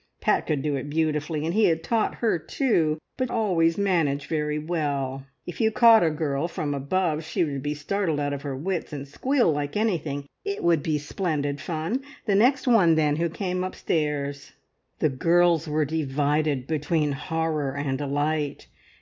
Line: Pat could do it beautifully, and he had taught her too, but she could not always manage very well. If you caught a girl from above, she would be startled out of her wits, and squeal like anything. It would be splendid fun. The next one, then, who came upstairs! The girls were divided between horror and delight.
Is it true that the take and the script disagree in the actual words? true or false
true